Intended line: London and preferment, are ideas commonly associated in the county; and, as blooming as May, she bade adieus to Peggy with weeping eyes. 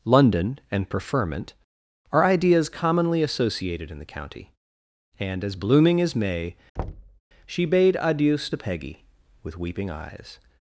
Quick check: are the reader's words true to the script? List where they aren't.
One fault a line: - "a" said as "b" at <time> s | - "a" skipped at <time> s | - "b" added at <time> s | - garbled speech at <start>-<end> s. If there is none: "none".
none